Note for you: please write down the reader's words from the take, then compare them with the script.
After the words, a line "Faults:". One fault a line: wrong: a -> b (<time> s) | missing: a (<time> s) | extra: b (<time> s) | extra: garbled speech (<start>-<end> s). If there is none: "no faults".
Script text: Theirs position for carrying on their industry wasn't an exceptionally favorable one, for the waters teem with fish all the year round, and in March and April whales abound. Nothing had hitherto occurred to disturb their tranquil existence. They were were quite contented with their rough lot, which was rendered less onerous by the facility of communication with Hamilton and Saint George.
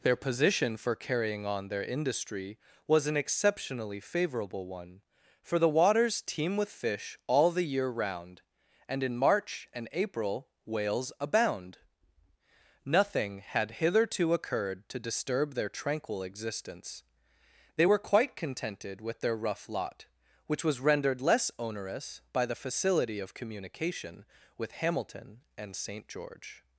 Their position for carrying on their industry was an exceptionally favorable one, for the waters teem with fish all the year round, and in March and April whales abound. Nothing had hitherto occurred to disturb their tranquil existence. They were quite contented with their rough lot, which was rendered less onerous by the facility of communication with Hamilton and Saint George.
Faults:
wrong: Theirs -> Their (0.0 s)
wrong: wasn't -> was (2.9 s)
missing: were (18.0 s)